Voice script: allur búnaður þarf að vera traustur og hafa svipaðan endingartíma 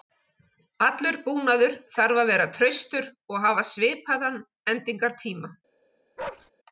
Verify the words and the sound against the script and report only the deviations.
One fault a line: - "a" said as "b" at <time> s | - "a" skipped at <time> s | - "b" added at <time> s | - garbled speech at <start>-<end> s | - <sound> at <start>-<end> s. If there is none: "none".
- bark at 6.2-6.5 s